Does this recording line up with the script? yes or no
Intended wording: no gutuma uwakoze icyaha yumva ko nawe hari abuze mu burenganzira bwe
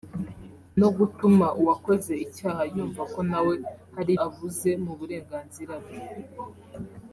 yes